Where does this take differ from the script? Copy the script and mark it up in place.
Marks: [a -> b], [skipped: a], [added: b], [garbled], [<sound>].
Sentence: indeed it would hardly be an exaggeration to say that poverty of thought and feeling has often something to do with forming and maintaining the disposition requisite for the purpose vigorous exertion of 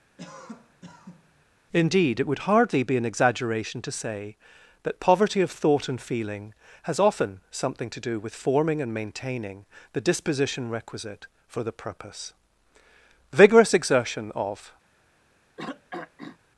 [cough] indeed it would hardly be an exaggeration to say that poverty of thought and feeling has often something to do with forming and maintaining the disposition requisite for the purpose vigorous exertion of [throat clearing]